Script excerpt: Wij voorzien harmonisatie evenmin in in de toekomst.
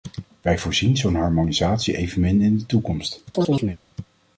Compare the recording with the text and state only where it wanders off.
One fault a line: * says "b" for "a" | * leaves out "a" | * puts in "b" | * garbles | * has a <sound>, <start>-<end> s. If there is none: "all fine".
* puts in "zo'n"
* leaves out "in"
* has a chirp, 3.3-3.8 s